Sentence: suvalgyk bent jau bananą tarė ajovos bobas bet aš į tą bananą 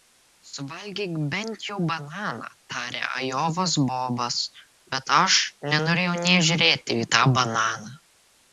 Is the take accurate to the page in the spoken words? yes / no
no